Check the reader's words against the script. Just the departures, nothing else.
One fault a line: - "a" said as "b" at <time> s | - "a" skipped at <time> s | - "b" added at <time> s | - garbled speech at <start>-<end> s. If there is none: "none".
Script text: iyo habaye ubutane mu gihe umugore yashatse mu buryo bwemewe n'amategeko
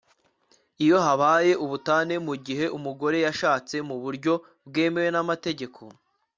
none